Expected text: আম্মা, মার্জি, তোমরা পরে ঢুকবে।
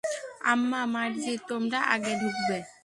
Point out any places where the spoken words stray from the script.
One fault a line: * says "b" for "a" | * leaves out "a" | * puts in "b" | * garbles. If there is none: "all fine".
* says "আগে" for "পরে"